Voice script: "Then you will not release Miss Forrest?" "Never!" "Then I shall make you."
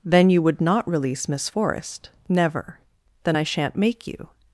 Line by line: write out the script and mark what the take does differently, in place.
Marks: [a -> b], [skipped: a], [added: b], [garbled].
"Then you [will -> would] not release Miss Forrest?" "Never!" "Then I [shall -> shan't] make you."